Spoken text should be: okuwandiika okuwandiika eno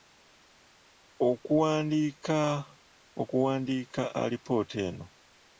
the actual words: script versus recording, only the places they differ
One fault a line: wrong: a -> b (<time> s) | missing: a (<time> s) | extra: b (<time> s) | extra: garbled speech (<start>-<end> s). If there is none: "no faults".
extra: alipoota (4.2 s)